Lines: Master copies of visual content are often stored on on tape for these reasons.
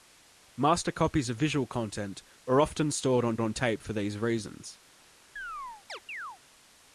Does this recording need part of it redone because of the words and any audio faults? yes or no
yes